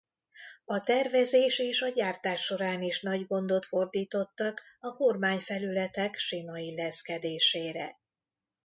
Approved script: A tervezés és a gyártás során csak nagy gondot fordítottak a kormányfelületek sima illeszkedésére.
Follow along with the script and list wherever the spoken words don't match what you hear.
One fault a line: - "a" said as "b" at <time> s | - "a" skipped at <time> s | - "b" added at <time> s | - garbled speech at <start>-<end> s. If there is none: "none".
- "csak" said as "is" at 2.8 s